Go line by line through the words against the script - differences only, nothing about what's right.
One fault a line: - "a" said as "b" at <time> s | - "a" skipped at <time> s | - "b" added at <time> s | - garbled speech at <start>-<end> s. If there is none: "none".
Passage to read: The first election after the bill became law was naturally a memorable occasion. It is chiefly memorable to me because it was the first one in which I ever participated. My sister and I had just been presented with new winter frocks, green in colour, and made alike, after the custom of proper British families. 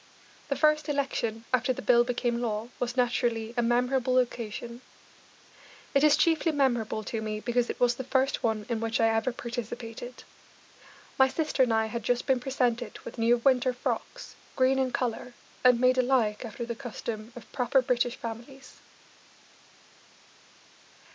none